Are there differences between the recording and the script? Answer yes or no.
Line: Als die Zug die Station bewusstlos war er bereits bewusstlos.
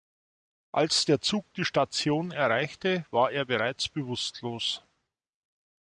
yes